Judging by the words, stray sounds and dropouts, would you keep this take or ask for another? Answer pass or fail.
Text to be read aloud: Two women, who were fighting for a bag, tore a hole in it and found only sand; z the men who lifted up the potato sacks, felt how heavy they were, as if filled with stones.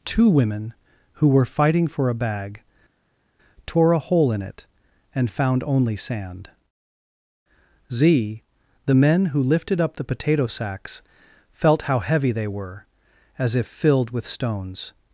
pass